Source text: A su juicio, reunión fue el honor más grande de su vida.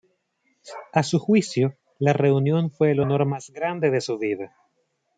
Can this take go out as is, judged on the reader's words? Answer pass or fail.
fail